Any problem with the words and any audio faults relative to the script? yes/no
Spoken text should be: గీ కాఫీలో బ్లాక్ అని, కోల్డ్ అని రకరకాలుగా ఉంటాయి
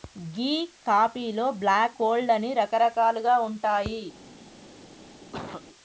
yes